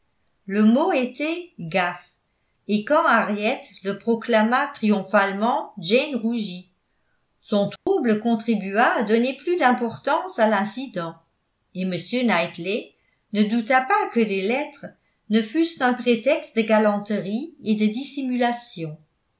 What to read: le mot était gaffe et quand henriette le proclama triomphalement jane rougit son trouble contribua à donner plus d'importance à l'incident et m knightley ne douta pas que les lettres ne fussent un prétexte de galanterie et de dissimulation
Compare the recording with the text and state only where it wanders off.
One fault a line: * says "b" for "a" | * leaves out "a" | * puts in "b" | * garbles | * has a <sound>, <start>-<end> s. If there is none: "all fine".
* has a dropout, 7.8-7.9 s